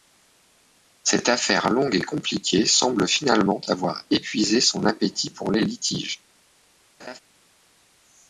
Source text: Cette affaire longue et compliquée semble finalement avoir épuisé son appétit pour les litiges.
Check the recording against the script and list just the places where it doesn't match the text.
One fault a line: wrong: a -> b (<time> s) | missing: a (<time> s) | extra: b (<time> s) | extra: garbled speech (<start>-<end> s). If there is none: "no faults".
no faults